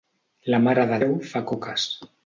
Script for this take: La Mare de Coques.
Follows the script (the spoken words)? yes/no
no